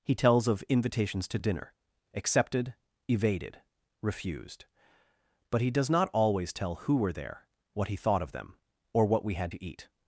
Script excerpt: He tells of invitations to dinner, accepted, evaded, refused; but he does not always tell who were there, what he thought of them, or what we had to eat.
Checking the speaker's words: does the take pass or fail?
pass